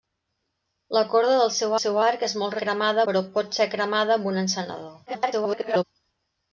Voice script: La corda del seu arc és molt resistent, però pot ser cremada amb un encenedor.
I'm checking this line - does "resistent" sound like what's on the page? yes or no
no